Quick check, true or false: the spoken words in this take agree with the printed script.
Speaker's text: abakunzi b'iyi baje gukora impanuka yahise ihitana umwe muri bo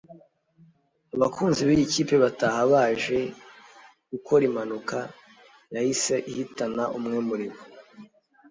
false